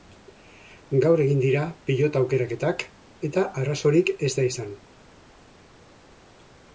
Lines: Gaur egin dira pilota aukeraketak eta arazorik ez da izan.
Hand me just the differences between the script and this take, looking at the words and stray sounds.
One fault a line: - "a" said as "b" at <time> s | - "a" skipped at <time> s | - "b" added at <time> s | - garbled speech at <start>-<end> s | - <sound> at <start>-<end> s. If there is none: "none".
none